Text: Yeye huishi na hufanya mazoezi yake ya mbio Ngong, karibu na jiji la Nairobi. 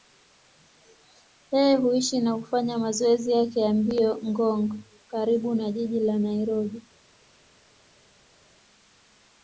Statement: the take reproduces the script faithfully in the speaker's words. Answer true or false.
true